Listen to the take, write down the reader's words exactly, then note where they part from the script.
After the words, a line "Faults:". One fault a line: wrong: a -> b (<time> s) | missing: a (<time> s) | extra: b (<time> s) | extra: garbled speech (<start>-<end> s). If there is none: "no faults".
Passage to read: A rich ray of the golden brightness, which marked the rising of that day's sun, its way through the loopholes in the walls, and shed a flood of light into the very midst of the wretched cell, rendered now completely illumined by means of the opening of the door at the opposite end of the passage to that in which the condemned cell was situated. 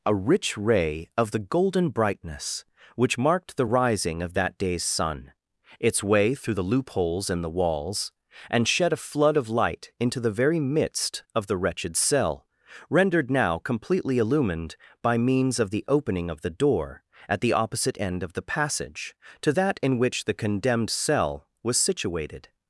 A rich ray of the golden brightness, which marked the rising of that day's sun, its way through the loopholes in the walls, and shed a flood of light into the very midst of the wretched cell, rendered now completely illumined by means of the opening of the door at the opposite end of the passage to that in which the condemned cell was situated.
Faults:
no faults